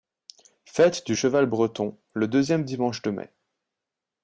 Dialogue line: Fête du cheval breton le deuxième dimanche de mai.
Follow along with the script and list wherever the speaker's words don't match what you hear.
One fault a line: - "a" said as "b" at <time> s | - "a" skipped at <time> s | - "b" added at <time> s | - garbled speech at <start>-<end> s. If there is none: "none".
none